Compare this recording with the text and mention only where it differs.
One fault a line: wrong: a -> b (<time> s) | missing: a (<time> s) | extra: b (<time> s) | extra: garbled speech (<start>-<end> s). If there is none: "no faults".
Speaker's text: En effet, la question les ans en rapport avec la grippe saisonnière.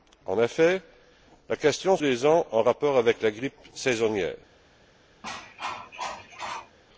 no faults